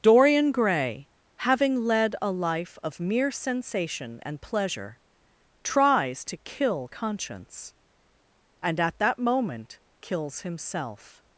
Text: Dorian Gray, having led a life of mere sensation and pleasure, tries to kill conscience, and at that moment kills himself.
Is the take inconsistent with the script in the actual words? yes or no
no